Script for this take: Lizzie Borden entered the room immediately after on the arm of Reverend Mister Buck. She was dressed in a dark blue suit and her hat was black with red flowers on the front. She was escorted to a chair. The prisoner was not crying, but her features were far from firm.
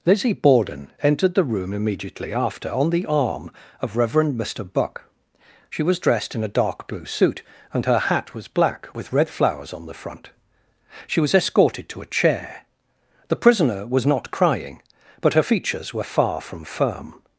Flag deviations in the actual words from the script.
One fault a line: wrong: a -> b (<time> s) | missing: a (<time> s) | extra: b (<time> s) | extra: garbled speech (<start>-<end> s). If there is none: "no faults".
no faults